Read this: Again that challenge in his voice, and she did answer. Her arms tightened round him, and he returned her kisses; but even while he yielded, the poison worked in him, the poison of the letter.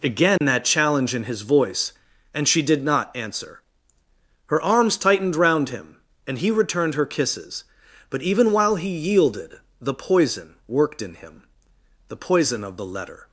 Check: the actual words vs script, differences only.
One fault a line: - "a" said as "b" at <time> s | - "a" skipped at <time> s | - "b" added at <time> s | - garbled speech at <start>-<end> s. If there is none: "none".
- "not" added at 2.8 s